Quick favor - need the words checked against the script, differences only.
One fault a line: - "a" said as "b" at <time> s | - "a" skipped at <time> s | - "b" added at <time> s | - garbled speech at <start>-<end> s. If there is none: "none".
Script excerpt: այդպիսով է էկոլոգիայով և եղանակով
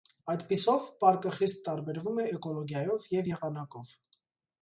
- "պարկը խիստ տարբերվում" added at 1.0 s